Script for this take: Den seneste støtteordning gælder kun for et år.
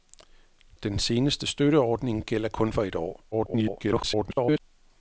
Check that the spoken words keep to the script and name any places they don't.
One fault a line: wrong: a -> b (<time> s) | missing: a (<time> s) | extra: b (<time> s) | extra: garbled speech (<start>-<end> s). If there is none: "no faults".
extra: garbled speech (3.3-4.6 s)